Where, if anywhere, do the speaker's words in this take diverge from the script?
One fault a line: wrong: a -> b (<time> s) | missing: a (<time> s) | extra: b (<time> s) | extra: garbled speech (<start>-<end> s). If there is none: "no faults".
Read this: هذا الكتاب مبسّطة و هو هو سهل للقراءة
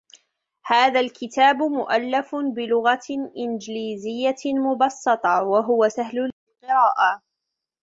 extra: مؤلف بلغة إنجليزية (1.6 s)
missing: هو (5.9 s)